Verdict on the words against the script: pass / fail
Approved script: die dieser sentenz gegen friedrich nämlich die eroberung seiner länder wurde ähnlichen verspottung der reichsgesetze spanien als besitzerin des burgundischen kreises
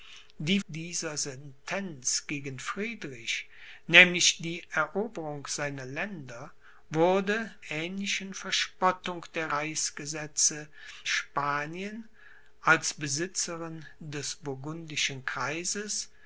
pass